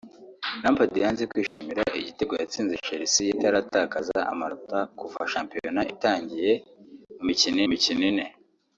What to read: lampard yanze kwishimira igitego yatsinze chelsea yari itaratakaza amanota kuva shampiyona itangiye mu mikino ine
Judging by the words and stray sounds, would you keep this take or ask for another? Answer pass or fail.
fail